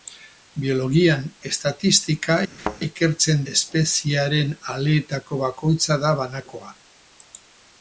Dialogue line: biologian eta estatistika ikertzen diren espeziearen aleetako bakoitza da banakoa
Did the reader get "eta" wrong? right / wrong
wrong